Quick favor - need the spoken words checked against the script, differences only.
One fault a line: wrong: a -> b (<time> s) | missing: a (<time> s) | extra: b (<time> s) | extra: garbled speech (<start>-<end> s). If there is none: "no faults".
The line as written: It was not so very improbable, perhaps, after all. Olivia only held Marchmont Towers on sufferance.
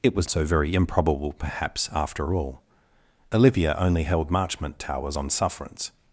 missing: not (0.3 s)